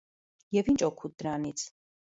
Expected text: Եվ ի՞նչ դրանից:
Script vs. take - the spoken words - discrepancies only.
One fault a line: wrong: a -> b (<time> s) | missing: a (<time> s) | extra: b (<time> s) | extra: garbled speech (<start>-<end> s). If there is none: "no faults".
extra: օգուտ (0.9 s)